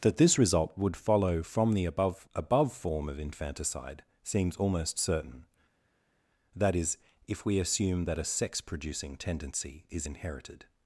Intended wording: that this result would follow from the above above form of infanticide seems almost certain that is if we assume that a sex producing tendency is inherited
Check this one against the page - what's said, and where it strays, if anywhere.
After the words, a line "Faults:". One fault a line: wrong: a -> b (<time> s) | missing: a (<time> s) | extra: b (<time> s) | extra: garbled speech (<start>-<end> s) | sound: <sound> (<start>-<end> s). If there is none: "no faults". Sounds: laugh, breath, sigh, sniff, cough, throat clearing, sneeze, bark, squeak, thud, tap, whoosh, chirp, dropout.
that this result would follow from the above above form of infanticide seems almost certain that is if we assume that a sex producing tendency is inherited
Faults:
no faults